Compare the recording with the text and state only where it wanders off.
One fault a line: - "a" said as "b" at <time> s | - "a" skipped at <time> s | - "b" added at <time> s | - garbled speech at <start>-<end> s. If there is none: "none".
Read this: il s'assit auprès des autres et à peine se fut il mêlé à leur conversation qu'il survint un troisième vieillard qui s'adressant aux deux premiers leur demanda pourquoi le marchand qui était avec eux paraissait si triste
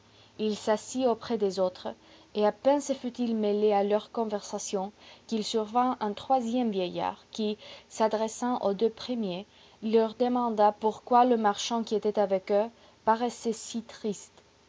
none